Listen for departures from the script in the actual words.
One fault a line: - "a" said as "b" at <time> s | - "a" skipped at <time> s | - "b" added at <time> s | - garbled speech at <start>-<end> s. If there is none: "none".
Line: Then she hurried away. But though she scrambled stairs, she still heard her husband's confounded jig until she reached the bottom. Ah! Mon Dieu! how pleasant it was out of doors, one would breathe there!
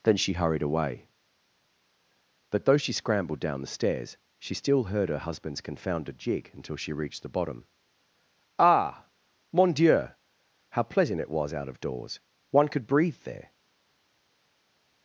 - "down the" added at 3.4 s
- "would" said as "could" at 12.7 s